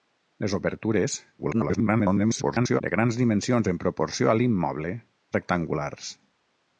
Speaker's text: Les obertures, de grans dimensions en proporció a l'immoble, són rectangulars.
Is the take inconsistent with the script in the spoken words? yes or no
yes